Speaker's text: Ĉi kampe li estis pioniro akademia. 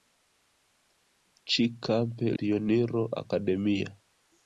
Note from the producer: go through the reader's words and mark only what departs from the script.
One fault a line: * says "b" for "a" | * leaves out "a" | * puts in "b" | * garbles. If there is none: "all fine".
* leaves out "li estis"